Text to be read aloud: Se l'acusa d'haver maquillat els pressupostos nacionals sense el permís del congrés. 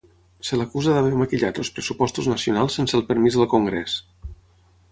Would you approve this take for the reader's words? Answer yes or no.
yes